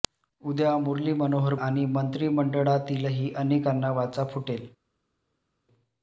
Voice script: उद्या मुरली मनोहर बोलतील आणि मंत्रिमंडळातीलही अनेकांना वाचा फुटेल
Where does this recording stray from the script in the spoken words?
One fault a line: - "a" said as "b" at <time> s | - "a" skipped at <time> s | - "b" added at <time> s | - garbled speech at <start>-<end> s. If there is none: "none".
- "बोलतील" skipped at 1.5 s